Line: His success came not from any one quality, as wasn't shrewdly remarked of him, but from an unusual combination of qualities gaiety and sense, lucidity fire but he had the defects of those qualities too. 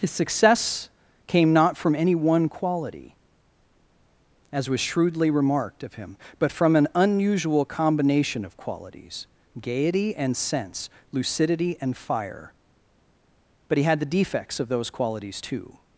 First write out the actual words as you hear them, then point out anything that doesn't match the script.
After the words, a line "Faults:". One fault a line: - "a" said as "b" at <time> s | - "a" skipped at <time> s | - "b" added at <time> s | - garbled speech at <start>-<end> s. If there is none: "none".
His success came not from any one quality, as was shrewdly remarked of him, but from an unusual combination of qualities gaiety and sense, lucidity and fire but he had the defects of those qualities too.
Faults:
- "wasn't" said as "was" at 4.7 s
- "and" added at 11.8 s